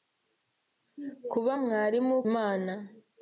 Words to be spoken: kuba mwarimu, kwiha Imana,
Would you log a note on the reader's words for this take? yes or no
yes